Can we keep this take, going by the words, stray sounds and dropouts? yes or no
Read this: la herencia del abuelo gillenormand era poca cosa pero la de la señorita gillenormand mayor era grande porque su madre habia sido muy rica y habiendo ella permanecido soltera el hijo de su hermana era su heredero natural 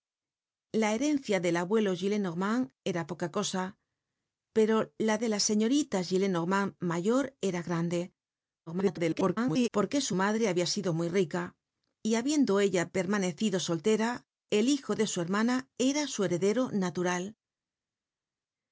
no